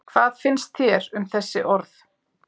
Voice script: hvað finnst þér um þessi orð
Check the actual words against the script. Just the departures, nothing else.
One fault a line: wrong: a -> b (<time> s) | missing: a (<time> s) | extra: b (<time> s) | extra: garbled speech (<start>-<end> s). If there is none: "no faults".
no faults